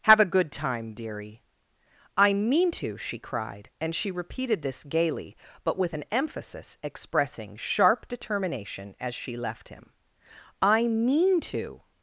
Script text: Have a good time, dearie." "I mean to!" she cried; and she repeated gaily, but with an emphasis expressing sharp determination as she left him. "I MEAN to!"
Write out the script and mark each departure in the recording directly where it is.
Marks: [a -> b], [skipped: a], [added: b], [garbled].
Have a good time, dearie." "I mean to!" she cried; and she repeated [added: this] gaily, but with an emphasis expressing sharp determination as she left him. "I MEAN to!"